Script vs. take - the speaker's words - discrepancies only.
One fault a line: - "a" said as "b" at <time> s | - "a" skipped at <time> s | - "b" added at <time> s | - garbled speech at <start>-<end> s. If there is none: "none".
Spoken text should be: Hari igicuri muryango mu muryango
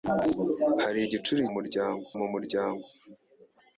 none